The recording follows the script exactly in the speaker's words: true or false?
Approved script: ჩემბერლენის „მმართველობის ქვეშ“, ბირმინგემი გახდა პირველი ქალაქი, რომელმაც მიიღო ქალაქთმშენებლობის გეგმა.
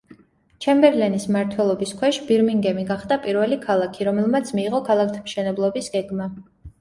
true